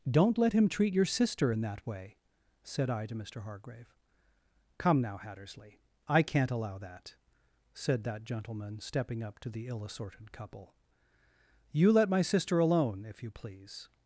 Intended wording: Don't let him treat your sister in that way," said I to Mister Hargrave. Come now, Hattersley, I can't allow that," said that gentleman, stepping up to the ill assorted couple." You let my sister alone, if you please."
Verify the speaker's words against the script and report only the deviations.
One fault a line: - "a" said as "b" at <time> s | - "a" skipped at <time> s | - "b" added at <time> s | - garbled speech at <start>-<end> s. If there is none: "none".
none